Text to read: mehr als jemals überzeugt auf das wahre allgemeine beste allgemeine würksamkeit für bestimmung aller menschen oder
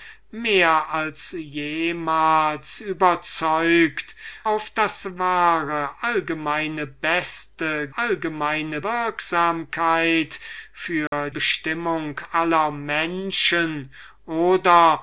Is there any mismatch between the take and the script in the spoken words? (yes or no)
no